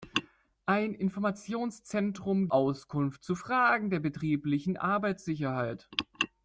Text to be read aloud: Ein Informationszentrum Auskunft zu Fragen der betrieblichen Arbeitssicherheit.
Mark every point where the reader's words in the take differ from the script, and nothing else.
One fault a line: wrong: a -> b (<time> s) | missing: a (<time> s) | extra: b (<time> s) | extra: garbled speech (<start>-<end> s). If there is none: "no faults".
no faults